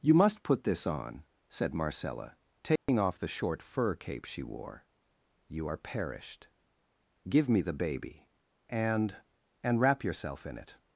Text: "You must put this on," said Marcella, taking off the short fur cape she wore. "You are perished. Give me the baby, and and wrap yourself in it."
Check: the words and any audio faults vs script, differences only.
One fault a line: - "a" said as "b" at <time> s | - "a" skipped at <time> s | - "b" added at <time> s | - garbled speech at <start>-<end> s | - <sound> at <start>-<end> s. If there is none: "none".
- dropout at 2.8-2.9 s